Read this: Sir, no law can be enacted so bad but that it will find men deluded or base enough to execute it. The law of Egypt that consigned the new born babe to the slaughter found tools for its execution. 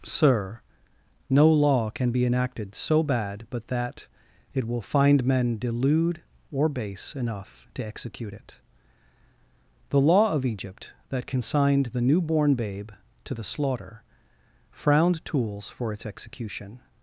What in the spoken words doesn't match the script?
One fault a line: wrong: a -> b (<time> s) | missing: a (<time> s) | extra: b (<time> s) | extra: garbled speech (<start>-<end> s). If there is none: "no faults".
wrong: deluded -> delude (5.6 s)
wrong: found -> frowned (14.7 s)